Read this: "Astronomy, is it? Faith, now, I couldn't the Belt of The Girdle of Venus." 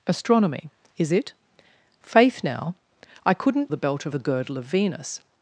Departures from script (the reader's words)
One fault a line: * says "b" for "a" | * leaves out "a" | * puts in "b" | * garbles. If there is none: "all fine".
all fine